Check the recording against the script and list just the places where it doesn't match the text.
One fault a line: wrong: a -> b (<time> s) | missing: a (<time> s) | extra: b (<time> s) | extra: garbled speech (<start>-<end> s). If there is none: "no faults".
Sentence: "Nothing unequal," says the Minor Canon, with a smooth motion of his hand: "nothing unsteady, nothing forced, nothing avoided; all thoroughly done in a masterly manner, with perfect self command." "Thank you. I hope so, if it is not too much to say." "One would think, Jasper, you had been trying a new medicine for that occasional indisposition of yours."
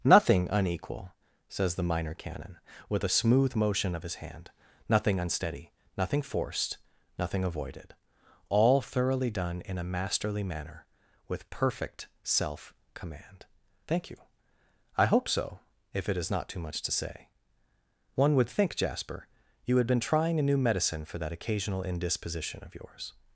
no faults